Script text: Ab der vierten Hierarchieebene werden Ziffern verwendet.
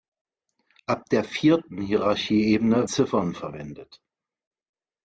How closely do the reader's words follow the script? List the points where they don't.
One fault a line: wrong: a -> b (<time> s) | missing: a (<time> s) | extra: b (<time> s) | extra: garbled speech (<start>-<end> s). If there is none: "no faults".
missing: werden (2.9 s)